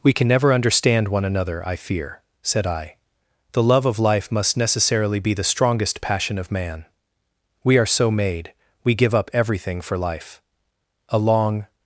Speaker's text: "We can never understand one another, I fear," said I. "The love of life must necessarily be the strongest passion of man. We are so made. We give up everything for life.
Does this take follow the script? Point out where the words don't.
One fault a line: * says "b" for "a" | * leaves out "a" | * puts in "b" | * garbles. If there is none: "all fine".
* puts in "A long"